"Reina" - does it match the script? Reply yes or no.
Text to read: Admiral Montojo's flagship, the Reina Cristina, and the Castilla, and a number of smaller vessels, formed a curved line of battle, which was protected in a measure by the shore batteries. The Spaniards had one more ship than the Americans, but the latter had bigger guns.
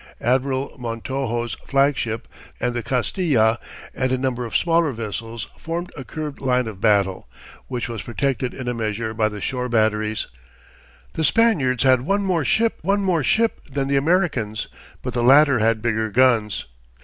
no